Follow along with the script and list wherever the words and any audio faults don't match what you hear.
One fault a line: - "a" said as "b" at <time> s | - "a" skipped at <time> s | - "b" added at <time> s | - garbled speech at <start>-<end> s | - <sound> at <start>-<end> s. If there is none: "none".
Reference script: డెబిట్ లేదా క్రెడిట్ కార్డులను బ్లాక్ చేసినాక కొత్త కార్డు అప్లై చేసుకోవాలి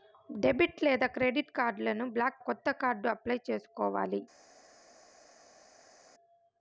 - "చేసినాక" skipped at 2.4 s